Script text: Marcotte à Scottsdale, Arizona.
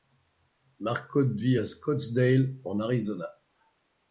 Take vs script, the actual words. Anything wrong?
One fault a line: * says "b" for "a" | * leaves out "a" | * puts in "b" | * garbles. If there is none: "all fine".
* puts in "vit"
* puts in "en"